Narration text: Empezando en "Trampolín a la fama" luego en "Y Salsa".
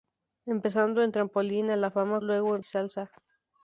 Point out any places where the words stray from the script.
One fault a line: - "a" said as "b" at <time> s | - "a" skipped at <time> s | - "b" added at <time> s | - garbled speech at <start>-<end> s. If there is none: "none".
none